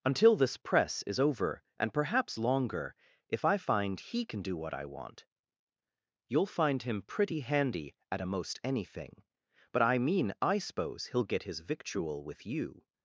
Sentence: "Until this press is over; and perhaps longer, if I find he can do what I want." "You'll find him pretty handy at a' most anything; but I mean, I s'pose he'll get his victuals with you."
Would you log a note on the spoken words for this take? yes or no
yes